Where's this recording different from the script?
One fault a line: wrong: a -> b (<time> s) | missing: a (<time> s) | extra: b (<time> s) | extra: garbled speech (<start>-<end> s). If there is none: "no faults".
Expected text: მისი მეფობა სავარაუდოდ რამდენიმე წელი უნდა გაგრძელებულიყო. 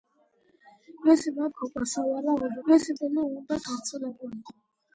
wrong: რამდენიმე -> მისი (2.7 s)